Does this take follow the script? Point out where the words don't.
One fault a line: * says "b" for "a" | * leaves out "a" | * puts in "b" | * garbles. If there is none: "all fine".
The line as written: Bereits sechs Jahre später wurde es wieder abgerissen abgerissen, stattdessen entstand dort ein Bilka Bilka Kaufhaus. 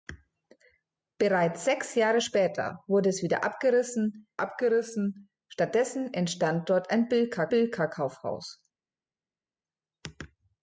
all fine